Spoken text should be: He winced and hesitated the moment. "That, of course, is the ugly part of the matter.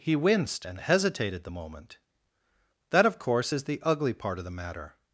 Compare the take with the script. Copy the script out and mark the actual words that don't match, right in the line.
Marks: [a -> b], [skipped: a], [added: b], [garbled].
He winced and hesitated the moment. "That, of course, is the ugly part of the matter.